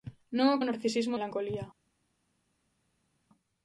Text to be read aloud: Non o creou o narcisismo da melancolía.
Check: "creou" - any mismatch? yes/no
yes